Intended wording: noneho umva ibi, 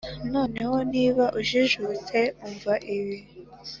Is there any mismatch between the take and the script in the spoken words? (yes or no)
yes